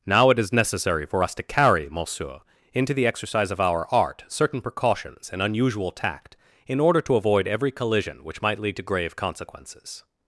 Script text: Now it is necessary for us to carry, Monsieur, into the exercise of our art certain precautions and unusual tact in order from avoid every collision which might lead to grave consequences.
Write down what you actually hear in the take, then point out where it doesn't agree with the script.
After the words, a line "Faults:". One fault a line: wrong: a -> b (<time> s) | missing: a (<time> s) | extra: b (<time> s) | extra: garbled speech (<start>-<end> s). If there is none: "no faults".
Now it is necessary for us to carry, Monsieur, into the exercise of our art certain precautions and unusual tact in order to avoid every collision which might lead to grave consequences.
Faults:
wrong: from -> to (7.0 s)